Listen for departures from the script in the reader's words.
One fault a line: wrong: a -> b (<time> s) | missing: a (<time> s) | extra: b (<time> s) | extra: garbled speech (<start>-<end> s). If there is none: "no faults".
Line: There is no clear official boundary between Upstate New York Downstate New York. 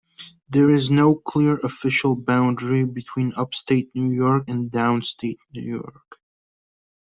extra: and (4.5 s)